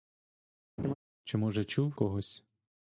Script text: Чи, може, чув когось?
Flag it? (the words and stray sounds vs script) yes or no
yes